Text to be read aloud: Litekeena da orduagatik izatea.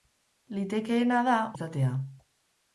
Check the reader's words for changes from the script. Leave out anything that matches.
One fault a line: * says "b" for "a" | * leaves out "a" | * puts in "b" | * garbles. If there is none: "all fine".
* leaves out "orduagatik"